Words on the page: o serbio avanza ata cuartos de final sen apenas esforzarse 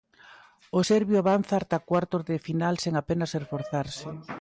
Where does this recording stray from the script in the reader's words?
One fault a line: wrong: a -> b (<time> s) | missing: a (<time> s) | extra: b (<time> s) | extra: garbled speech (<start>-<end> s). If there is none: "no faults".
no faults